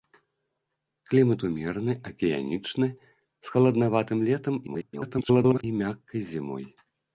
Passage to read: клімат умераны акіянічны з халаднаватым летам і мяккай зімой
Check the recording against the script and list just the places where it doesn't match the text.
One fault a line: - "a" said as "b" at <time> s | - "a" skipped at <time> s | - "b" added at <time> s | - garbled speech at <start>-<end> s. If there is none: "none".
- garbled speech at 4.7-5.6 s